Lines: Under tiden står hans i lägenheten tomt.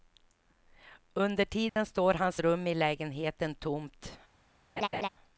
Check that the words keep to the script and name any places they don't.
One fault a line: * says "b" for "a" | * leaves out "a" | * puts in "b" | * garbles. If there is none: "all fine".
* puts in "rum"